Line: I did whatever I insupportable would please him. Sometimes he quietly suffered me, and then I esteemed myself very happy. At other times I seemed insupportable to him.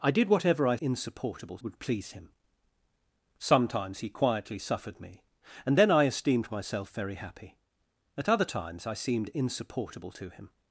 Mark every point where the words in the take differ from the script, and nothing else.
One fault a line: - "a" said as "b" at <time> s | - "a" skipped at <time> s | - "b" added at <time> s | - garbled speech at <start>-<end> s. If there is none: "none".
none